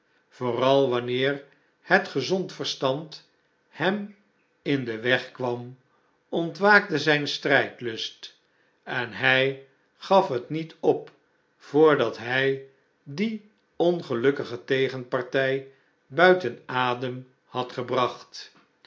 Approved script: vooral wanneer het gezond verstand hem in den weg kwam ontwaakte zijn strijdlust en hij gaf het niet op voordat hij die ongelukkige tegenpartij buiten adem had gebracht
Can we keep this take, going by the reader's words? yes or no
yes